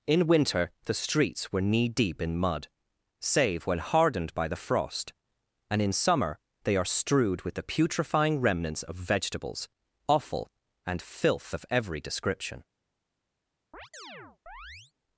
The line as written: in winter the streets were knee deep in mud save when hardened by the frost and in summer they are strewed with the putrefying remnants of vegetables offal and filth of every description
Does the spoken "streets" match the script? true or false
true